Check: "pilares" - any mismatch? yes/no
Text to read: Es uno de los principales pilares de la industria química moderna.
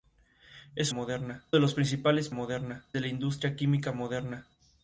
yes